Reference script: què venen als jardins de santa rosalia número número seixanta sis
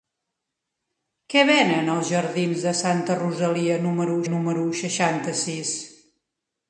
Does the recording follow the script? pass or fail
pass